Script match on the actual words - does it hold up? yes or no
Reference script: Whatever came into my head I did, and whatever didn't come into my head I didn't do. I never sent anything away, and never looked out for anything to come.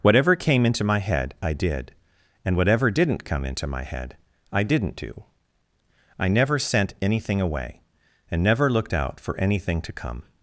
yes